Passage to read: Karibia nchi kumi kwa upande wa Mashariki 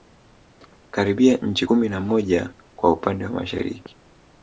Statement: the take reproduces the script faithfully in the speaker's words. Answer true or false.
false